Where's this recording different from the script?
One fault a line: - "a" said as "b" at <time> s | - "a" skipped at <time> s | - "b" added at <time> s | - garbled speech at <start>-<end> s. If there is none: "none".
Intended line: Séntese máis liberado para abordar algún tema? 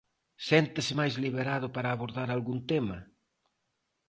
none